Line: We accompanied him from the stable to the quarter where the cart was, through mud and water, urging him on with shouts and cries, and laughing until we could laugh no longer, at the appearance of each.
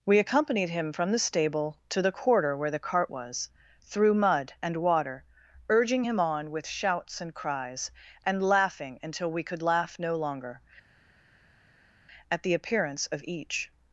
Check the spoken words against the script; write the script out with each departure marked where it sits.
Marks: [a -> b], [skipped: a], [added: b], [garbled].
We accompanied him from the stable to the quarter where the cart was, through mud and water, urging him on with shouts and cries, and laughing until we could laugh no longer, at the appearance of each.